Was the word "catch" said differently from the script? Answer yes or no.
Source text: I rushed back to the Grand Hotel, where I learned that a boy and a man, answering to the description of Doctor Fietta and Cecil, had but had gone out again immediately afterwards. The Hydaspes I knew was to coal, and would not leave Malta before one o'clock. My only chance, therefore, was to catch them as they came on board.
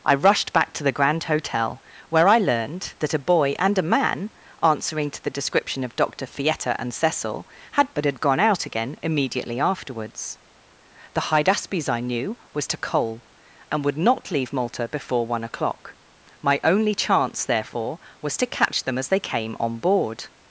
no